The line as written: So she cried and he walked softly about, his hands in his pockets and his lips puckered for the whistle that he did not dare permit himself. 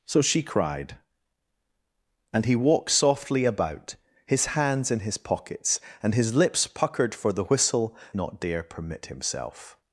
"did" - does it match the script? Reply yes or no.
no